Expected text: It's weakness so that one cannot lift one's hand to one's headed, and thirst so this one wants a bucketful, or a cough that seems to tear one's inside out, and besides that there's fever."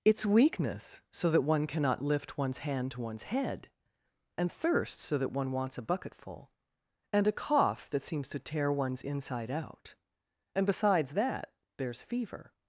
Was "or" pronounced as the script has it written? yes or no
no